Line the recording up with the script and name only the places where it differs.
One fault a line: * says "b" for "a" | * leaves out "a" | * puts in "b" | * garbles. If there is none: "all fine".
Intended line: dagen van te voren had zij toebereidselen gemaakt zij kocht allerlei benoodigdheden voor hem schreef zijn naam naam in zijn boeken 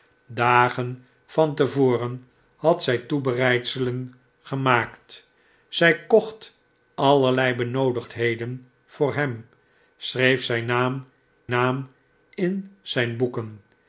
all fine